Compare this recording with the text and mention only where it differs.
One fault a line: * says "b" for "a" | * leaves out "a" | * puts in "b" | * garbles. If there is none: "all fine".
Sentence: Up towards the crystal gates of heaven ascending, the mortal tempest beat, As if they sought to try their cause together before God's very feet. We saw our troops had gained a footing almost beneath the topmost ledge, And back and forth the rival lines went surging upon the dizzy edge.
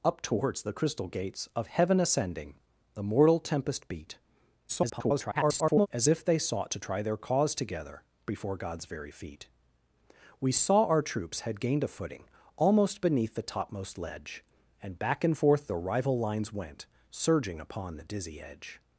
* garbles